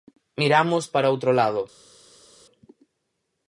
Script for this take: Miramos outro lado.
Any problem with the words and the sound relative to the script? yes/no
yes